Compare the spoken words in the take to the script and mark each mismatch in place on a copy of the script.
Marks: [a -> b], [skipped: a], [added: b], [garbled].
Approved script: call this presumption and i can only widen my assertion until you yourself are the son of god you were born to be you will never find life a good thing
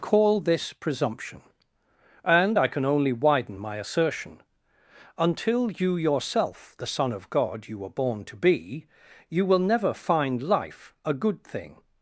call this presumption and i can only widen my assertion until you yourself [skipped: are] the son of god you were born to be you will never find life a good thing